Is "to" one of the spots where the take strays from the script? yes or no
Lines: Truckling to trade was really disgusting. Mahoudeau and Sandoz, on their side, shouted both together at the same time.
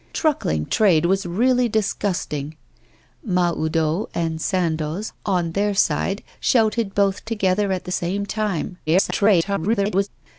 yes